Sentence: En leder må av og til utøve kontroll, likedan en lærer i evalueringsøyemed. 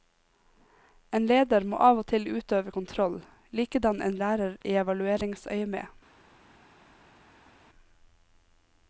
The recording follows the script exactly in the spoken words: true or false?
true